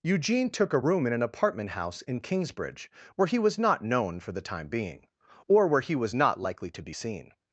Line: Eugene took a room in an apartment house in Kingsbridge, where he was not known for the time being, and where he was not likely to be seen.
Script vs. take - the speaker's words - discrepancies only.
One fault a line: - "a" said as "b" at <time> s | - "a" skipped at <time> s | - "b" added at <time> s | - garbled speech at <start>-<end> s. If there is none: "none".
- "and" said as "or" at 5.5 s